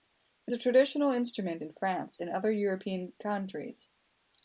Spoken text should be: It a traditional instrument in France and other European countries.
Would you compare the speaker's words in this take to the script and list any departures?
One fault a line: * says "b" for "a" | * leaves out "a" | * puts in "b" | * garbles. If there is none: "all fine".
all fine